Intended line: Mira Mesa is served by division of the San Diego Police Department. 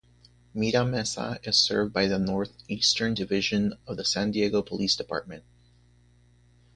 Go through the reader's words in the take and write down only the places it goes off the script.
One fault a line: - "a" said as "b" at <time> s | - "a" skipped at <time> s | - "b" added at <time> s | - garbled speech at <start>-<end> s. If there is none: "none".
- "the Northeastern" added at 2.1 s